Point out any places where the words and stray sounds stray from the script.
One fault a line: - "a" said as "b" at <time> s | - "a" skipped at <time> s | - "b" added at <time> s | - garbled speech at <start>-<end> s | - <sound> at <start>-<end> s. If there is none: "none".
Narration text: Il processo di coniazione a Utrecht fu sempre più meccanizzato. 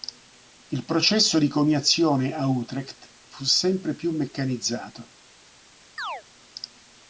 - chirp at 6.0-6.2 s